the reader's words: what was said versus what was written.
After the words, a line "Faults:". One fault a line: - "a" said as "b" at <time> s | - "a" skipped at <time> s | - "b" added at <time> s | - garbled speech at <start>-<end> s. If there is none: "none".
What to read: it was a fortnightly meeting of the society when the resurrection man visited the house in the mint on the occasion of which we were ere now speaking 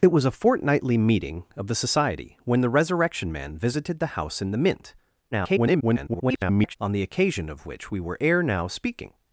it was a fortnightly meeting of the society when the resurrection man visited the house in the mint [garbled] on the occasion of which we were ere now speaking
Faults:
- garbled speech at 5.3-6.8 s